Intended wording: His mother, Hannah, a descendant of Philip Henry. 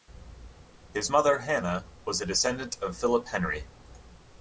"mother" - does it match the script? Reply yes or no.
yes